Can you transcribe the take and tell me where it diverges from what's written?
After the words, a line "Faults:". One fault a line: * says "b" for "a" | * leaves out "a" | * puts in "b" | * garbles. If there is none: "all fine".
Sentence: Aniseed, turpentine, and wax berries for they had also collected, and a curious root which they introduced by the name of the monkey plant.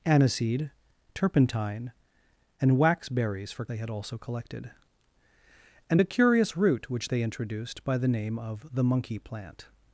Aniseed, turpentine, and wax berries for they had also collected, and a curious root which they introduced by the name of the monkey plant.
Faults:
all fine